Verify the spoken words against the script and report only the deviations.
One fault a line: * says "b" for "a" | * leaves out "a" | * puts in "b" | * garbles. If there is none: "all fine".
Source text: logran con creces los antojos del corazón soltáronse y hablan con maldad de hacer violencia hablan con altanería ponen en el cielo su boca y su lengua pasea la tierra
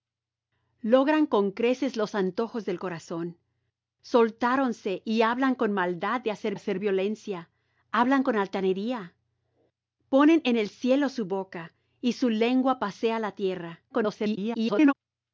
* puts in "hacer"
* garbles